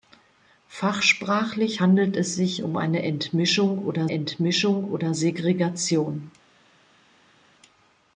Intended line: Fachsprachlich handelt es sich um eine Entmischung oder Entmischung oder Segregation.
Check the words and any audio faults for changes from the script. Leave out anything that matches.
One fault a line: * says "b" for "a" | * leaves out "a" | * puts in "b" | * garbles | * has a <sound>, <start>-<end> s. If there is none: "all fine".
all fine